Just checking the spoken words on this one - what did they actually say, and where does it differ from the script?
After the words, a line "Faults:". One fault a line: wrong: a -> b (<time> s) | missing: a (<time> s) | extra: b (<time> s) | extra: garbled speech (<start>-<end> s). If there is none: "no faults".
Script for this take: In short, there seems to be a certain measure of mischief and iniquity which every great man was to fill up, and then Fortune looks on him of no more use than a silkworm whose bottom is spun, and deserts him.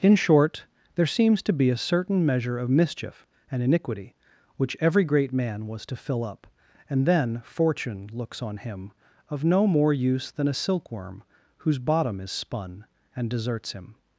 In short, there seems to be a certain measure of mischief and iniquity which every great man was to fill up, and then Fortune looks on him of no more use than a silkworm whose bottom is spun, and deserts him.
Faults:
no faults